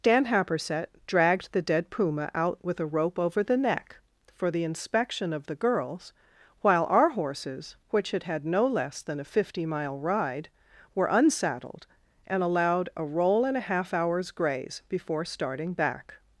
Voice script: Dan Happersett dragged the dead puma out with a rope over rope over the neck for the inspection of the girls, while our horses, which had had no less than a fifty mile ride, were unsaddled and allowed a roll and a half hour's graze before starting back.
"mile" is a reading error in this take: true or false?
false